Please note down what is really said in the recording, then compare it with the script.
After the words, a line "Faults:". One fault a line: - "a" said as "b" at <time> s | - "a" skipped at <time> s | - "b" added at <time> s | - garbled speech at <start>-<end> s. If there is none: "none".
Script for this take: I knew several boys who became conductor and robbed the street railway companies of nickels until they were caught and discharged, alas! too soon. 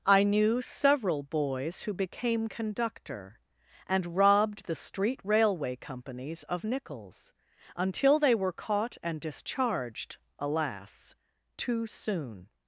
I knew several boys who became conductor and robbed the street railway companies of nickels until they were caught and discharged, alas! too soon.
Faults:
none